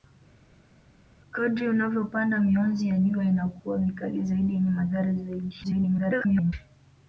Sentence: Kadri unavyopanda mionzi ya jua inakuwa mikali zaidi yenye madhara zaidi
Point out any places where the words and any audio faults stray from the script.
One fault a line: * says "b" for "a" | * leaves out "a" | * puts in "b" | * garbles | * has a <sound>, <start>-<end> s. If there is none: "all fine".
* garbles